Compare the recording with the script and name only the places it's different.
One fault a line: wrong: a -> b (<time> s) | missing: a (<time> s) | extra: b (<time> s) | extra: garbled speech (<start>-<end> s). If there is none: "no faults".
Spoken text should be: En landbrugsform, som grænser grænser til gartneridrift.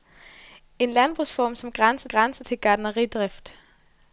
no faults